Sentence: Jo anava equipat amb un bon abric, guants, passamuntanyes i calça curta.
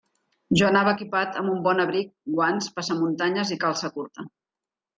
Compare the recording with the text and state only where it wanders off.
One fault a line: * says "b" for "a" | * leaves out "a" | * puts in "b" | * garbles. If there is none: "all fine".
all fine